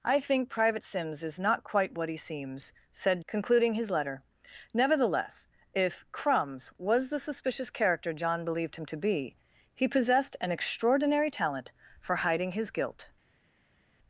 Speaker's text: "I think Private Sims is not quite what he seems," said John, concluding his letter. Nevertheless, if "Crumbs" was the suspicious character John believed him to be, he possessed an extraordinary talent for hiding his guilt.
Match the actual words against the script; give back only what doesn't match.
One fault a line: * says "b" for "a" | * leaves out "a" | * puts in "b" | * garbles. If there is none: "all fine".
* leaves out "John"